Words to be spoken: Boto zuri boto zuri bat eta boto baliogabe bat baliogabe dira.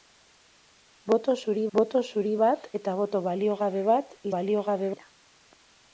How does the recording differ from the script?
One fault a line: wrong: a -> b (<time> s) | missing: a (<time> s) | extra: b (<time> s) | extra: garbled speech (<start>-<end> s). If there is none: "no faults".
no faults